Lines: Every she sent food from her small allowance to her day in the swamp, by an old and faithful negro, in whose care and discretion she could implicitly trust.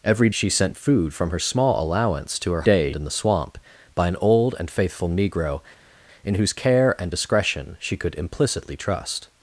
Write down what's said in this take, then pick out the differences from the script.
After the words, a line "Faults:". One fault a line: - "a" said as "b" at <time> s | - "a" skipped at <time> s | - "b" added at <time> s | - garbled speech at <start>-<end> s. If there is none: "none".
Every she sent food from her small allowance to her day in the swamp, by an old and faithful negro, in whose care and discretion she could implicitly trust.
Faults:
none